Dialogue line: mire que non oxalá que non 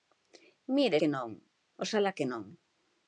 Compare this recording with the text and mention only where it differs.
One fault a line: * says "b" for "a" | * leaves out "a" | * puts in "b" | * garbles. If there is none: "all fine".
all fine